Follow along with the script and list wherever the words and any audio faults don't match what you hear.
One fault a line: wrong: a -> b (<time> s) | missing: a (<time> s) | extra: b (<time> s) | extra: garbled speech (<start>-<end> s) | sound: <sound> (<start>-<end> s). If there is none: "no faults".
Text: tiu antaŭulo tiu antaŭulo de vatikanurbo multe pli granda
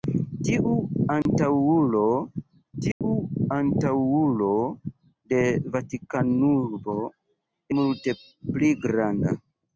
sound: dropout (1.2-1.3 s)
sound: dropout (2.9-3.0 s)